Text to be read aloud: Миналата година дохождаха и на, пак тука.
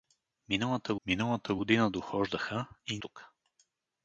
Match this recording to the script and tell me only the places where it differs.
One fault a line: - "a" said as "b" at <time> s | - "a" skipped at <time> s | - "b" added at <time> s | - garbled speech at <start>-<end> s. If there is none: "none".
- "миналата" added at 1.1 s
- "на пак" skipped at 3.0 s